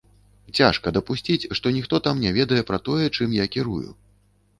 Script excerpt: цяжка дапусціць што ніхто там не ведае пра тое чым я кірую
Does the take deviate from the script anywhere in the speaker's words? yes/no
no